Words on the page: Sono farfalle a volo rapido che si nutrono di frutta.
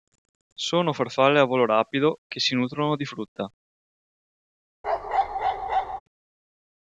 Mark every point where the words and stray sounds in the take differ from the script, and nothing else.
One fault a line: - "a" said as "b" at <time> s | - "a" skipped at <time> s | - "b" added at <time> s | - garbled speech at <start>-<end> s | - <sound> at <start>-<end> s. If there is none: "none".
- bark at 4.8-6.0 s